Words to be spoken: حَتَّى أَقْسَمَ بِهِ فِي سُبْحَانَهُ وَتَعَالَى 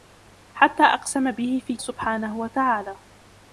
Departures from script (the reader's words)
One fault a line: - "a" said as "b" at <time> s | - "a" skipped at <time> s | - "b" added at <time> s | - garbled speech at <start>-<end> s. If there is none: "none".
none